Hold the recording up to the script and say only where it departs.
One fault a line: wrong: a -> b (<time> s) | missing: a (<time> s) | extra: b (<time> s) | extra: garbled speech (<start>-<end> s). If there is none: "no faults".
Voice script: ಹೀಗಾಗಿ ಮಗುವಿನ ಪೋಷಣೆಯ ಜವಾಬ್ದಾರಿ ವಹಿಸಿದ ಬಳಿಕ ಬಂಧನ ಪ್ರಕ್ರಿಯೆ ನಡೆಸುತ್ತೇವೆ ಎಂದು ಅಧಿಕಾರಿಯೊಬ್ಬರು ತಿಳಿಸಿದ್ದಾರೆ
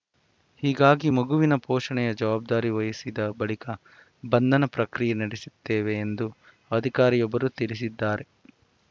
no faults